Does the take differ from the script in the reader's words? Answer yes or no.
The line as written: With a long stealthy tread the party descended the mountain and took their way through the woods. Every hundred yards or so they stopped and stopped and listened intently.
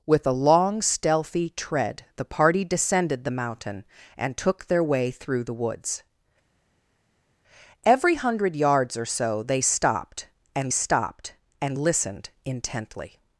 no